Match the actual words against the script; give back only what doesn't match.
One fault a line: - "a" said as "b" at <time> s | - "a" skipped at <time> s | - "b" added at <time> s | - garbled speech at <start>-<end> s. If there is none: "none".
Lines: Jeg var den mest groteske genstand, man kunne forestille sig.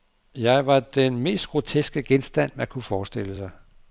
none